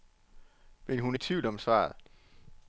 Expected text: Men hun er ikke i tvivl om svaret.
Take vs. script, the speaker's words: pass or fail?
fail